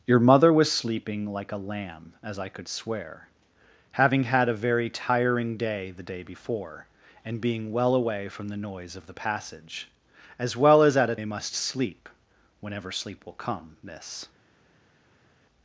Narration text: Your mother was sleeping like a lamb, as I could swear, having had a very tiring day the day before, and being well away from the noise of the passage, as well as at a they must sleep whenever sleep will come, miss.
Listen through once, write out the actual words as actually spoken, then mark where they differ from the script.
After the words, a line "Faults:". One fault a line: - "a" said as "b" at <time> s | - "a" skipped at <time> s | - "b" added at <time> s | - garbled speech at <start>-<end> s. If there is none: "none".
Your mother was sleeping like a lamb, as I could swear, having had a very tiring day the day before, and being well away from the noise of the passage, as well as at a they must sleep whenever sleep will come, miss.
Faults:
none